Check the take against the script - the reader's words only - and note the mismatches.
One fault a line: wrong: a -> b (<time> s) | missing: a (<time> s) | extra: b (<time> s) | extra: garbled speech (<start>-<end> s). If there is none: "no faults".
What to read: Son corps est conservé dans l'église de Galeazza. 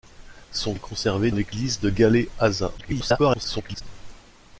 missing: corps (0.7 s)
missing: dans (1.3 s)
extra: garbled speech (2.8-3.8 s)